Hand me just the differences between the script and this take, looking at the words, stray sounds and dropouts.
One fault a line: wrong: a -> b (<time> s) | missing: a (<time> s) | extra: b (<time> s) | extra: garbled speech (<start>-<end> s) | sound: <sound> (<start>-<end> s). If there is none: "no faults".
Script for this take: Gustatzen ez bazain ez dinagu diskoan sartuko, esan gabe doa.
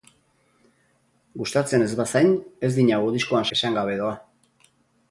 missing: sartuko (3.5 s)